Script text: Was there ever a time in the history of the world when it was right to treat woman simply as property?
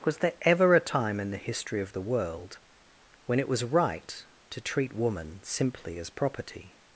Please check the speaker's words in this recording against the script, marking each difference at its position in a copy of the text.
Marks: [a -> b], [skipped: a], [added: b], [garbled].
Was there ever a time in the history of the world when it was right to treat woman simply as property?